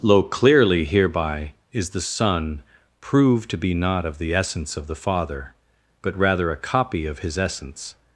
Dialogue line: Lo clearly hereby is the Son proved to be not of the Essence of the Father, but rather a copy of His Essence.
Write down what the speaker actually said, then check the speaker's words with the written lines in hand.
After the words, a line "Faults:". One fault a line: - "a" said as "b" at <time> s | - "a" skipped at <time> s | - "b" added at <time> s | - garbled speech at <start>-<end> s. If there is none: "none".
Lo clearly hereby is the Son proved to be not of the Essence of the Father, but rather a copy of His Essence.
Faults:
none